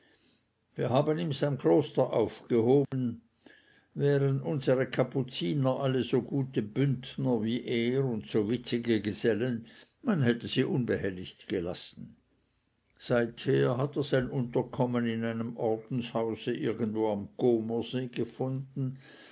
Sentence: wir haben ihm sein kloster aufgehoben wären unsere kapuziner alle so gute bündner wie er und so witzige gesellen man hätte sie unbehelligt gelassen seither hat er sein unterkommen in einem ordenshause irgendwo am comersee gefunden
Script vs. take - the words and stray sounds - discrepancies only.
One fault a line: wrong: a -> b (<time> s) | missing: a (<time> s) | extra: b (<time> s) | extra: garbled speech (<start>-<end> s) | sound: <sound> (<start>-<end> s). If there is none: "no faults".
sound: dropout (2.8-2.9 s)